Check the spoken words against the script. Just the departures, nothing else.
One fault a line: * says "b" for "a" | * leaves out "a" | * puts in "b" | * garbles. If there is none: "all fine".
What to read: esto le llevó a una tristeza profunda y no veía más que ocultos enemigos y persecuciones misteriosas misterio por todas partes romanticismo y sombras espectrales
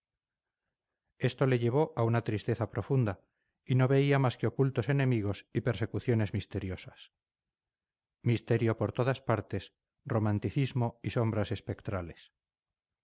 all fine